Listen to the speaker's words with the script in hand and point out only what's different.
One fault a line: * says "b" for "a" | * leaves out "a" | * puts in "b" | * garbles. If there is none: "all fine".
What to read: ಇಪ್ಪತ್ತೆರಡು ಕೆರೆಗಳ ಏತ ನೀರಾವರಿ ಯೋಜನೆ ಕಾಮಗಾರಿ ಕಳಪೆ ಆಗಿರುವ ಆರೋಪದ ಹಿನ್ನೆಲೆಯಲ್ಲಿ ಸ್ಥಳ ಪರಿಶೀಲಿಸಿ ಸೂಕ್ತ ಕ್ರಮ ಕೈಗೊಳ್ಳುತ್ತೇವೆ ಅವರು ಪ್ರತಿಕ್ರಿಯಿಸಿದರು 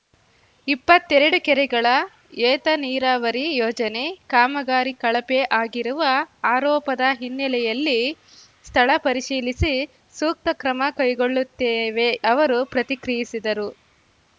all fine